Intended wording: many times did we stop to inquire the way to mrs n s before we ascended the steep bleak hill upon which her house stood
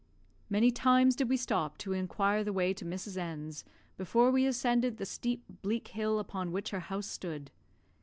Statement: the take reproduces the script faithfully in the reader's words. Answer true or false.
true